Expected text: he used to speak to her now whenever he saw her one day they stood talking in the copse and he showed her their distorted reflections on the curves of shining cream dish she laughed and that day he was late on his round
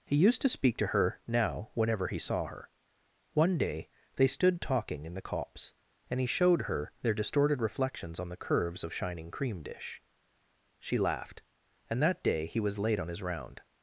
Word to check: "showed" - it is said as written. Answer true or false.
true